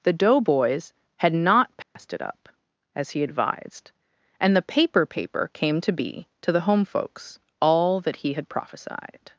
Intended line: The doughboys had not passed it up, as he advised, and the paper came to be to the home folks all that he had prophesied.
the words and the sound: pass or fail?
fail